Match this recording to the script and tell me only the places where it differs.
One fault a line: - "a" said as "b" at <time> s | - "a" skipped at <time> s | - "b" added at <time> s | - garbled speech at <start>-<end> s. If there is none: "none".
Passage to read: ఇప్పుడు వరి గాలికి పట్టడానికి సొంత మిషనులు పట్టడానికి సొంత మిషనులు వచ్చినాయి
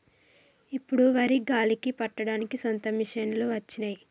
- "పట్టడానికి సొంత మిషనులు" skipped at 3.5 s